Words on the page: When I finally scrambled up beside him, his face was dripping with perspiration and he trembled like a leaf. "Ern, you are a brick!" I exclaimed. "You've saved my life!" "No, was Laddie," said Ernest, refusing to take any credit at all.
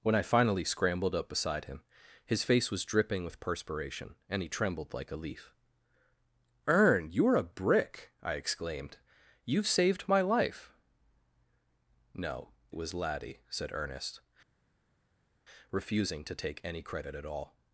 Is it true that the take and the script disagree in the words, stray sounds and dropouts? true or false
false